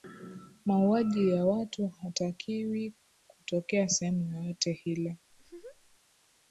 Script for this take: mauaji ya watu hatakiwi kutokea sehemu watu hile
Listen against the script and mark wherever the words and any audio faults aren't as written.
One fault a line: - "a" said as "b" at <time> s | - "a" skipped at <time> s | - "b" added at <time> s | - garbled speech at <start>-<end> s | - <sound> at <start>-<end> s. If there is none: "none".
- "watu" said as "yoyote" at 4.3 s
- laugh at 5.3-6.0 s